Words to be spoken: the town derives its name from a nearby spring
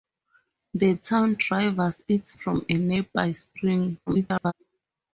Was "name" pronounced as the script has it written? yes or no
no